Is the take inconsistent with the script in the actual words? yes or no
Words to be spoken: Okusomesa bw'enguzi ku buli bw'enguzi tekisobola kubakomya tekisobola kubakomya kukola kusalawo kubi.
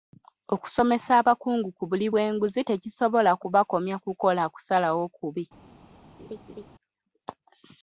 yes